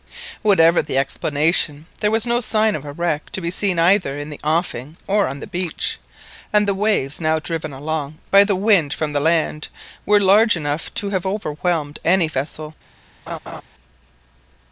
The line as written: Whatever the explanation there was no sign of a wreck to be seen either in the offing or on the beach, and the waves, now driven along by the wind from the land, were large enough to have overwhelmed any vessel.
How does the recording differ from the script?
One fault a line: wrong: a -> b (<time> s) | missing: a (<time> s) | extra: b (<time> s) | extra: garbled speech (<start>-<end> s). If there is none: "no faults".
no faults